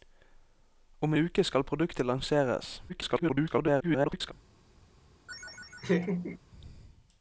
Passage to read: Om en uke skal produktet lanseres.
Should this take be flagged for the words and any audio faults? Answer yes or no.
yes